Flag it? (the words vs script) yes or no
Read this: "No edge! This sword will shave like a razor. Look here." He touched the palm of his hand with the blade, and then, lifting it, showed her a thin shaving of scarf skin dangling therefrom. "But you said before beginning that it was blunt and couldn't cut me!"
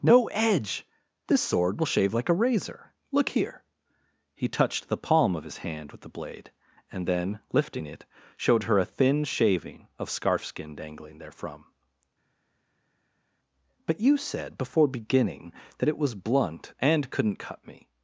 no